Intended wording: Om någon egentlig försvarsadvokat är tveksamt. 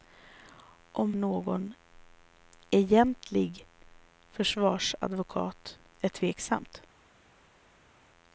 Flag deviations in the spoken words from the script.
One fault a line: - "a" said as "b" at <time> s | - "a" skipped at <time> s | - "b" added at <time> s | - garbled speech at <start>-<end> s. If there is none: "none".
none